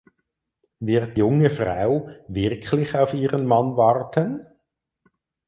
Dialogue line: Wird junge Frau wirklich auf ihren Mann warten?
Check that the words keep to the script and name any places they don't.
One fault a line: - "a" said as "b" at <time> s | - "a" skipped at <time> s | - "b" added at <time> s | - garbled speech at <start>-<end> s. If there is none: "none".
none